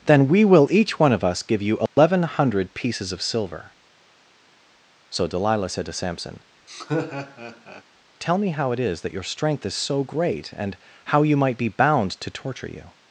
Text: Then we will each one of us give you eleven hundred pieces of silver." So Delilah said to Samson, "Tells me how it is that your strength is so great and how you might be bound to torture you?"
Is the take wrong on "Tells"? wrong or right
wrong